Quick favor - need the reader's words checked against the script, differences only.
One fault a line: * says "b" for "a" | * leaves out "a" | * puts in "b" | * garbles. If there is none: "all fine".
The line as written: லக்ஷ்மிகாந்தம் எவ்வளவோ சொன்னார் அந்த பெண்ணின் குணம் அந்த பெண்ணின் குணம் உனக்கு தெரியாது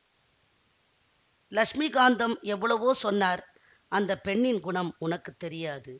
* leaves out "அந்த பெண்ணின் குணம்"